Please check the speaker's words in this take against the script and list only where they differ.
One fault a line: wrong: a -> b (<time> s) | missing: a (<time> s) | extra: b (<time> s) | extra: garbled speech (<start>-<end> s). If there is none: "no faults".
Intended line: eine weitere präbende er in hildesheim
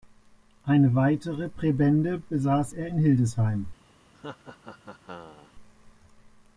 extra: besaß (2.3 s)